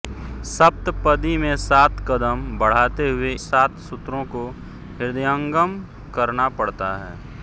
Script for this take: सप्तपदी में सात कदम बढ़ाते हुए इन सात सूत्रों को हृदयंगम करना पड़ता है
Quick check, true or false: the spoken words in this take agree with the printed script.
false